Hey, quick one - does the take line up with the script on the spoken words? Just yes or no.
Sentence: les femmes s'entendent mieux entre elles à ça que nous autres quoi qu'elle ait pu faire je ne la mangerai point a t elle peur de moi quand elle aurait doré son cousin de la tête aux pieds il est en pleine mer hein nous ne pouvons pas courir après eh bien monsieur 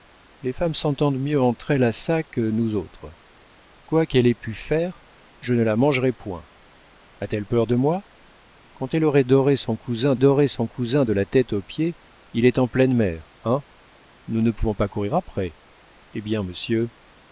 no